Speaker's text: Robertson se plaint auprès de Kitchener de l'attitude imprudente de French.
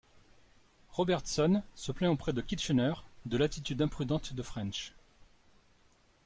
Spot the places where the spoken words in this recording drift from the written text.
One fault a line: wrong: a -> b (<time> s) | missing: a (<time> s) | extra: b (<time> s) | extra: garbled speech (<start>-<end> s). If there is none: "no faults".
no faults